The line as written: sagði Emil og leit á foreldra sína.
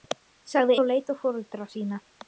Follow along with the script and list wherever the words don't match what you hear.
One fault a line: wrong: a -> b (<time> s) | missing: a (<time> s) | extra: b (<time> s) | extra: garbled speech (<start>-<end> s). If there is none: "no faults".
missing: Emil (0.8 s)